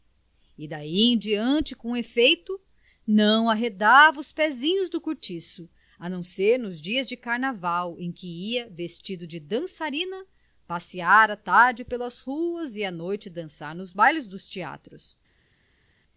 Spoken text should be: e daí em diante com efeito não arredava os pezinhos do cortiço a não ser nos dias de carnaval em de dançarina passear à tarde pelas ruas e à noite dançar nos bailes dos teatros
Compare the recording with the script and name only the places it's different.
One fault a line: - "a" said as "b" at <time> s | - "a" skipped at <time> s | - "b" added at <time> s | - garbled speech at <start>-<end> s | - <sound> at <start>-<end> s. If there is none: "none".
- "que ia vestido" added at 8.1 s